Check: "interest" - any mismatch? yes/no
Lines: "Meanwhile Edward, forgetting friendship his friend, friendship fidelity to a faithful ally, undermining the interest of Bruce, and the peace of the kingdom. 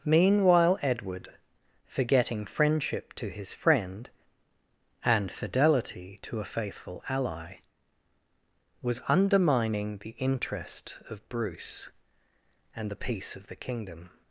no